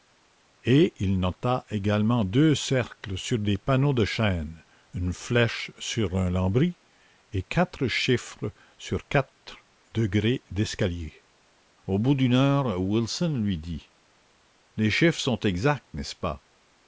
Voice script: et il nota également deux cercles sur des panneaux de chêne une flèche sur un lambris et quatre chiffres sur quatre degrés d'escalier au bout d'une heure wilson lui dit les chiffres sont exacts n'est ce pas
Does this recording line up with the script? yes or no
yes